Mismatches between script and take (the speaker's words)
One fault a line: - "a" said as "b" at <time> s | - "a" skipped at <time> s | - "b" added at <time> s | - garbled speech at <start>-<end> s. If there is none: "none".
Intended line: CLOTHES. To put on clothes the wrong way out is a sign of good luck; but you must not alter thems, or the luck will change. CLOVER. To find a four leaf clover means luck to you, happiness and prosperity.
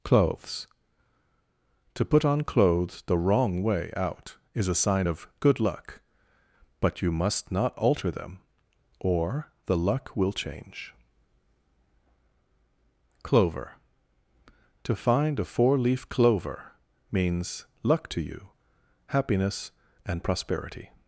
- "thems" said as "them" at 8.1 s